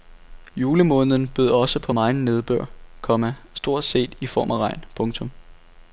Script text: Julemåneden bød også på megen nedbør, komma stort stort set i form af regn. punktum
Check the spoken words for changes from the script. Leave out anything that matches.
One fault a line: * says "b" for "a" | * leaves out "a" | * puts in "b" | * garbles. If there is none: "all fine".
* leaves out "stort"